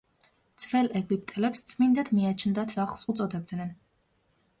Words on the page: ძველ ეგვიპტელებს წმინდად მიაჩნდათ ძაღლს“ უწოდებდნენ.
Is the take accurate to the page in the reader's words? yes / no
yes